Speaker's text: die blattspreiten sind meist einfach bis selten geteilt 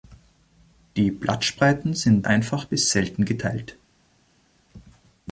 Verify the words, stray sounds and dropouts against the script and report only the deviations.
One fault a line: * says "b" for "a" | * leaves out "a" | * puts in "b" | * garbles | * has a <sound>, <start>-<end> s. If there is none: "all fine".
* leaves out "meist"